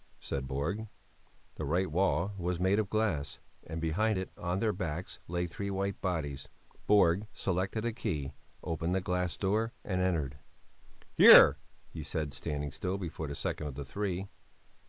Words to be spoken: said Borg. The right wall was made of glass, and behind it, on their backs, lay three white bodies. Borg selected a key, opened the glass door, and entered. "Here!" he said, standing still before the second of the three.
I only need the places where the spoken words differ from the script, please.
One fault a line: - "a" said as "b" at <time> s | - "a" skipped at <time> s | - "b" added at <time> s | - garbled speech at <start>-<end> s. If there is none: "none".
none